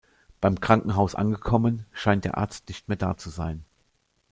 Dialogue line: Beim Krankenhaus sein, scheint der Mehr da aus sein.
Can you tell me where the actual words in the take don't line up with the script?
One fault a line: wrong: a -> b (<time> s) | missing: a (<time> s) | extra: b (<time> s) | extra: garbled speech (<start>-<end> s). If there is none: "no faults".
wrong: sein -> angekommen (1.1 s)
extra: Arzt nicht (2.4 s)
wrong: aus -> zu (3.2 s)